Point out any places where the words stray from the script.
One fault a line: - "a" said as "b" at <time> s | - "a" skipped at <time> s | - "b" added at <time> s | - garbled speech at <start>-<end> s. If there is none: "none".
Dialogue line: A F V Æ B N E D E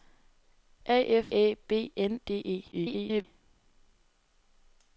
- "V" skipped at 1.3 s
- "E" skipped at 2.2 s
- garbled speech at 2.7-3.2 s